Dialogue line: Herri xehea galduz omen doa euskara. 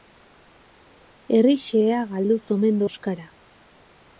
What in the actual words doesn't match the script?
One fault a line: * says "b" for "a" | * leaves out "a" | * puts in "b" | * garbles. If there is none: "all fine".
* leaves out "doa"